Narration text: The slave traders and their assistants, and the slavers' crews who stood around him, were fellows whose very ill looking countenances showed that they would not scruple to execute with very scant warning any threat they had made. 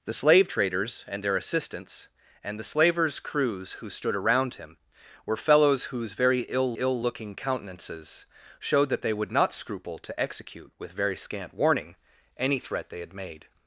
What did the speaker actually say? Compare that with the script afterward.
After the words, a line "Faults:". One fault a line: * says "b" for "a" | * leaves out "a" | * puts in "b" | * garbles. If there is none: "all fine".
The slave traders and their assistants, and the slavers' crews who stood around him, were fellows whose very ill ill looking countenances showed that they would not scruple to execute with very scant warning any threat they had made.
Faults:
* puts in "ill"